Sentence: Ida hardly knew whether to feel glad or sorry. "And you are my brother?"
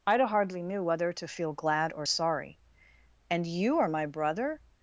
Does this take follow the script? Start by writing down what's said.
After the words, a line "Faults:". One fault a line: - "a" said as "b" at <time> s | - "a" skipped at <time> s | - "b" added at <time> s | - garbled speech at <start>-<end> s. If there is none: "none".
Ida hardly knew whether to feel glad or sorry. "And you are my brother?"
Faults:
none